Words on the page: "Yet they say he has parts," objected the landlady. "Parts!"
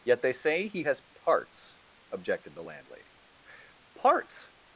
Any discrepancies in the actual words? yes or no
no